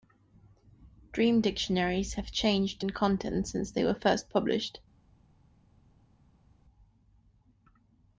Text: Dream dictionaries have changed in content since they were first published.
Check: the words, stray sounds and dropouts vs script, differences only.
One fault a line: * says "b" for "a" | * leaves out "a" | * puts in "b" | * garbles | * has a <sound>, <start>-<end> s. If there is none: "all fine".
all fine